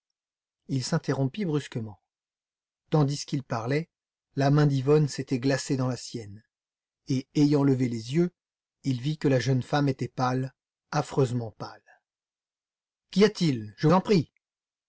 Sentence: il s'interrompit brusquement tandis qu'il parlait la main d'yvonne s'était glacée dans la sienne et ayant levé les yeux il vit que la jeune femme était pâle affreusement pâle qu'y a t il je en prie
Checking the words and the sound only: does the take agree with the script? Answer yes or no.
yes